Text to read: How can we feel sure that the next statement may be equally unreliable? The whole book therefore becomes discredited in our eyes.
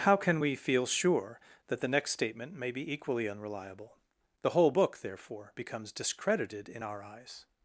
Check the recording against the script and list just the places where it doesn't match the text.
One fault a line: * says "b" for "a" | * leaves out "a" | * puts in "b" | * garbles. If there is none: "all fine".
all fine